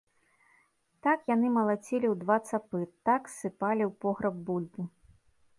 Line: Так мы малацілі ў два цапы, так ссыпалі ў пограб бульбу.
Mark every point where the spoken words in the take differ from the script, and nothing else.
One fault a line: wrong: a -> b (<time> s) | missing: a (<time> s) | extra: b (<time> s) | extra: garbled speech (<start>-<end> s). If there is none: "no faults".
wrong: мы -> яны (1.3 s)